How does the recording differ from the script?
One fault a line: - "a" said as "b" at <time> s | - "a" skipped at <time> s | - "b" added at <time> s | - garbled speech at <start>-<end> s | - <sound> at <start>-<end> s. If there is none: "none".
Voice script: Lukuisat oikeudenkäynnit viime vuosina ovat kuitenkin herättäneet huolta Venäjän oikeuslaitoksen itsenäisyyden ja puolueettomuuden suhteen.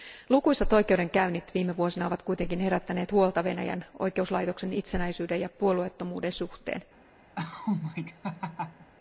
- laugh at 7.4-8.9 s